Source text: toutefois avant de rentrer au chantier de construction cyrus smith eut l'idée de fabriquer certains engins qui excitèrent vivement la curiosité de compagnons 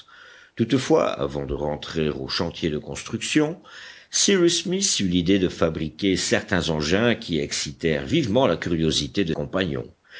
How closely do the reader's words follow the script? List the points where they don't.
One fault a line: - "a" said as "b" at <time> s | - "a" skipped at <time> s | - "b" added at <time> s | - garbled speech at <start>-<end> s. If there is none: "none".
none